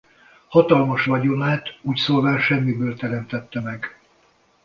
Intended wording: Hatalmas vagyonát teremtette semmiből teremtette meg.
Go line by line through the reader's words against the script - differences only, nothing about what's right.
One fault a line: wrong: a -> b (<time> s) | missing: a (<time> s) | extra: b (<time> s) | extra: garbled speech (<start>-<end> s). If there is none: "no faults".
wrong: teremtette -> úgyszólván (1.8 s)